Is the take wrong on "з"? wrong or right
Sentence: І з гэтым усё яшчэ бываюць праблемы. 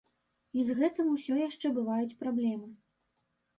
right